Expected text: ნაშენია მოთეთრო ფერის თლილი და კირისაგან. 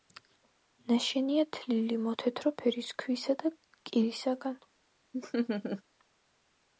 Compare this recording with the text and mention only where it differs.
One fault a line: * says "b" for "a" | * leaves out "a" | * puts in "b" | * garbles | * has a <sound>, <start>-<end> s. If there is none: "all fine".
* puts in "თლილი"
* says "ქვისა" for "თლილი"
* has a laugh, 5.1-5.8 s